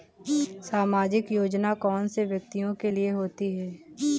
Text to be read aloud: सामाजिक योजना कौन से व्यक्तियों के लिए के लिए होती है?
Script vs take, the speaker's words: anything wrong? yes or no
yes